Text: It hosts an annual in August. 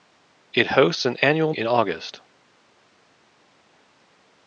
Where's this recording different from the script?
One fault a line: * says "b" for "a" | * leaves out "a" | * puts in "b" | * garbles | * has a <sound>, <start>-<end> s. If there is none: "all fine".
all fine